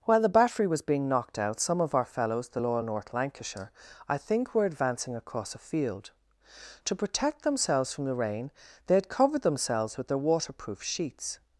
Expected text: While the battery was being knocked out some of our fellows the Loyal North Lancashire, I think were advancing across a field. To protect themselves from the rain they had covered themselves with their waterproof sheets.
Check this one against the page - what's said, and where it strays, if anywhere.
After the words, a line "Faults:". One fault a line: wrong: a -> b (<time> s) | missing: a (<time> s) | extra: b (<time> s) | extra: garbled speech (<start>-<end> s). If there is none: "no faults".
While the battery was being knocked out some of our fellows the Loyal North Lancashire, I think were advancing across a field. To protect themselves from the rain they had covered themselves with their waterproof sheets.
Faults:
no faults